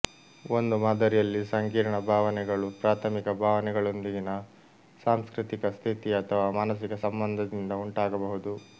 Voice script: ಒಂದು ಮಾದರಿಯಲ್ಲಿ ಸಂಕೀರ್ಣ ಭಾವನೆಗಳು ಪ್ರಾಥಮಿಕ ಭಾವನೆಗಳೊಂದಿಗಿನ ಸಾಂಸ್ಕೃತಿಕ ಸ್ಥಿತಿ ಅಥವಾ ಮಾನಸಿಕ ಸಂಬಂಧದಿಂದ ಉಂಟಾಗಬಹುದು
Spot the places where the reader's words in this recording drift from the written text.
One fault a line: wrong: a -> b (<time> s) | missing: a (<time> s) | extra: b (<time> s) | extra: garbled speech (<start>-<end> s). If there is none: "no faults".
no faults